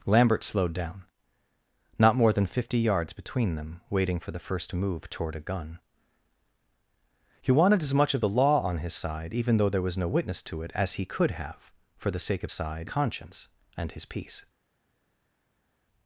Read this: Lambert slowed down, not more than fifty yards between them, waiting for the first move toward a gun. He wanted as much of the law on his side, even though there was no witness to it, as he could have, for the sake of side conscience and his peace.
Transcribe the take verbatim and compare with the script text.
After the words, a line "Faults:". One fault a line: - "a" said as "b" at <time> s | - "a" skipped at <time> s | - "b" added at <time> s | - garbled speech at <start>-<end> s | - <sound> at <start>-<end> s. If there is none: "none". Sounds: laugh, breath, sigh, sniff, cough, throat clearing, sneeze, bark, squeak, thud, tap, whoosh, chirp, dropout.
Lambert slowed down, not more than fifty yards between them, waiting for the first move toward a gun. He wanted as much of the law on his side, even though there was no witness to it, as he could have, for the sake of side conscience and his peace.
Faults:
none